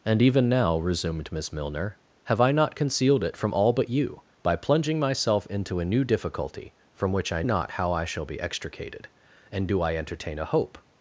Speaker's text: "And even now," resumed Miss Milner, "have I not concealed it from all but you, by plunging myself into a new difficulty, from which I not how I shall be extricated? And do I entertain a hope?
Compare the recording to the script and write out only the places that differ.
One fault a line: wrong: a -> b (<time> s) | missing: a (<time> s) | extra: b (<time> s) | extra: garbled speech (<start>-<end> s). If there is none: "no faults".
no faults